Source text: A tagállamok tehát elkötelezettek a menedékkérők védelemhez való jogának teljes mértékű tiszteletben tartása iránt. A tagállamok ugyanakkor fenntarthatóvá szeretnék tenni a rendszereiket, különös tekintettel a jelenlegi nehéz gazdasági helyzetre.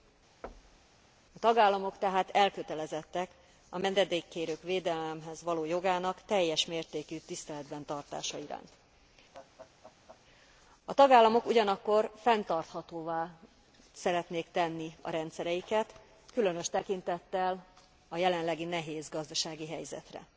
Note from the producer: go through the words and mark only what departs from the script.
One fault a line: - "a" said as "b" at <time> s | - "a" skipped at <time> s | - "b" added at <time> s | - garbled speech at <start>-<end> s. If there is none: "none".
none